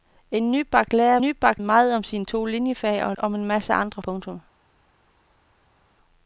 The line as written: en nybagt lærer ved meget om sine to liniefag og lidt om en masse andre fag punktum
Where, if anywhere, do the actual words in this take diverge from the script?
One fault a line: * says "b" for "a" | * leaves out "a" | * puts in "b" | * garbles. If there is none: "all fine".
* says "nybagt" for "ved"
* leaves out "lidt"
* leaves out "fag"